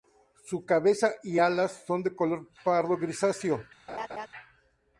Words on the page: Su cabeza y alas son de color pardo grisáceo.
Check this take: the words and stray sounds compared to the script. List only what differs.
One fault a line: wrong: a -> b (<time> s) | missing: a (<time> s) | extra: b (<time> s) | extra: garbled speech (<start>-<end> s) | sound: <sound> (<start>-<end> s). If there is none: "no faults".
sound: laugh (3.9-4.3 s)